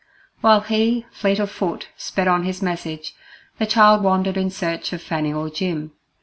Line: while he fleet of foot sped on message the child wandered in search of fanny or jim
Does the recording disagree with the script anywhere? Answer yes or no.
yes